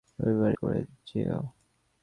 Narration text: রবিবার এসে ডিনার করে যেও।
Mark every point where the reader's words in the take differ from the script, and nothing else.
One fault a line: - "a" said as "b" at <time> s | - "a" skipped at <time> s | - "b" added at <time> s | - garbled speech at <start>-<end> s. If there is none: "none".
- "এসে ডিনার" skipped at 0.5 s